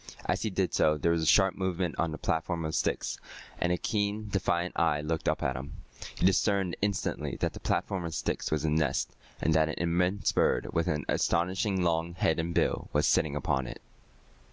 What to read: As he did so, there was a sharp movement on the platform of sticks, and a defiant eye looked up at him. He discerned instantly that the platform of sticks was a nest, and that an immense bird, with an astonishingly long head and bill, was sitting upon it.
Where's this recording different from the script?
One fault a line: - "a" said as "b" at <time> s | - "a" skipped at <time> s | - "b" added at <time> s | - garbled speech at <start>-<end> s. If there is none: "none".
- "keen" added at 3.8 s